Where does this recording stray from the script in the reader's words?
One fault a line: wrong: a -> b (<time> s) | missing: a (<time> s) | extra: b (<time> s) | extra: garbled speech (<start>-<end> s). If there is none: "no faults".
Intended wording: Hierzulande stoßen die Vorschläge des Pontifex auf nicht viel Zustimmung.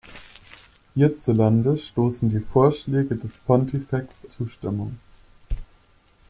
missing: auf nicht viel (4.2 s)